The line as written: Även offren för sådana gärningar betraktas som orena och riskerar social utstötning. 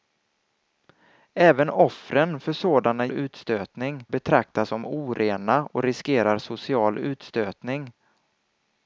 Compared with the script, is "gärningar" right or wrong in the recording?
wrong